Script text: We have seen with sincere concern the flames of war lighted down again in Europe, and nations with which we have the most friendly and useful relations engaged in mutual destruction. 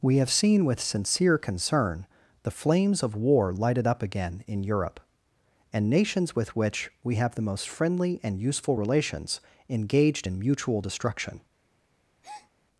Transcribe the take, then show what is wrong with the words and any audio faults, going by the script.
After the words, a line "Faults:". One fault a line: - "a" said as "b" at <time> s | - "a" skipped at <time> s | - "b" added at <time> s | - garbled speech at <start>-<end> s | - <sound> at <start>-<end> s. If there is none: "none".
We have seen with sincere concern the flames of war lighted up again in Europe, and nations with which we have the most friendly and useful relations engaged in mutual destruction.
Faults:
- "down" said as "up" at 3.9 s
- breath at 12.2-12.5 s